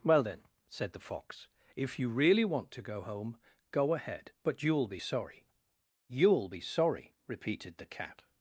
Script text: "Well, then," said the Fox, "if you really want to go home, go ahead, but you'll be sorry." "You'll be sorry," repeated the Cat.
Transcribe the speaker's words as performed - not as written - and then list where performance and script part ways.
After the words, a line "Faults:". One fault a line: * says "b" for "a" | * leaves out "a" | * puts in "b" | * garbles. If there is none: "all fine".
"Well, then," said the Fox, "if you really want to go home, go ahead, but you'll be sorry." "You'll be sorry," repeated the Cat.
Faults:
all fine